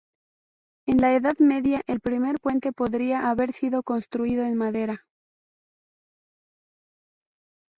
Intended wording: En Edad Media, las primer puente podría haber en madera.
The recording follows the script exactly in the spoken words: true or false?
false